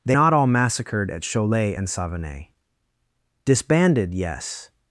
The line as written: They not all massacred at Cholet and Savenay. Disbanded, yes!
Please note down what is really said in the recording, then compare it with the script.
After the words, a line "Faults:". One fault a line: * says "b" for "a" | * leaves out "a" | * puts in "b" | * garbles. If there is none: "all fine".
They not all massacred at Cholet and Savenay. Disbanded, yes!
Faults:
all fine